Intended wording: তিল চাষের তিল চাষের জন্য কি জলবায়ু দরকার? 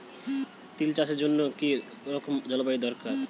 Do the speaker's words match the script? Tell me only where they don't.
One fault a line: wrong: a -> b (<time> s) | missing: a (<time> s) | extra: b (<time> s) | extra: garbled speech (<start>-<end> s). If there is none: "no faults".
missing: তিল চাষের (1.2 s)
extra: রকম (2.1 s)